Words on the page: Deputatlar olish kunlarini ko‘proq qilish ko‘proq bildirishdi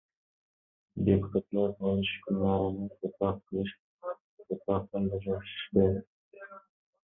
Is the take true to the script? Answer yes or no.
yes